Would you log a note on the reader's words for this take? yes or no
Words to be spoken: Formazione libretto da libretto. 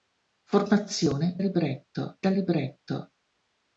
no